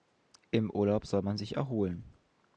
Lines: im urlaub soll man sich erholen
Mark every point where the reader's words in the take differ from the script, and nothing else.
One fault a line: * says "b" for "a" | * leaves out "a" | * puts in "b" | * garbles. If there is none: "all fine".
all fine